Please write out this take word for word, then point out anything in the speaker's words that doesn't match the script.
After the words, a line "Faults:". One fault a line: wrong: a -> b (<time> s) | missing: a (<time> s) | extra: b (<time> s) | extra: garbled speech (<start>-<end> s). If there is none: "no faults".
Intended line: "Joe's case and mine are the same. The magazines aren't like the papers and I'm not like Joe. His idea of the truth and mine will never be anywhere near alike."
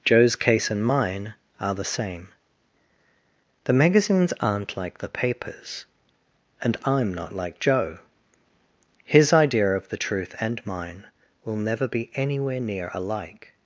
"Joe's case and mine are the same. The magazines aren't like the papers and I'm not like Joe. His idea of the truth and mine will never be anywhere near alike."
Faults:
no faults